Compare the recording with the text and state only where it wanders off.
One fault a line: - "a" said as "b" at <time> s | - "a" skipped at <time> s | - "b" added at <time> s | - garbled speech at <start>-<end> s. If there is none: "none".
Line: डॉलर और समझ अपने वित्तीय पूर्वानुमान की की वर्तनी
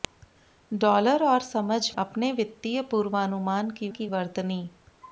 none